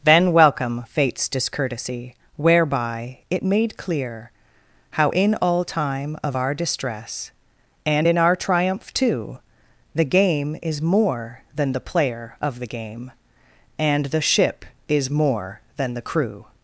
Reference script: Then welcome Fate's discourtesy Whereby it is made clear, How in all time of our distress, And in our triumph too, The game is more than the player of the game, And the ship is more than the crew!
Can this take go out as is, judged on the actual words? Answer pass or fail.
fail